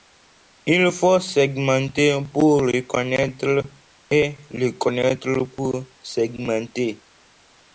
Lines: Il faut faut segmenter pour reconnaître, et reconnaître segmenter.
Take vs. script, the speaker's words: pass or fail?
fail